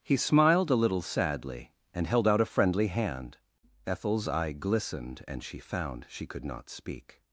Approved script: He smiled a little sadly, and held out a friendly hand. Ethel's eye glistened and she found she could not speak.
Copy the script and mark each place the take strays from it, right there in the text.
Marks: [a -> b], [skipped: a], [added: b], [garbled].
He smiled a little sadly, and held out a friendly hand. Ethel's eye glistened and she found she could not speak.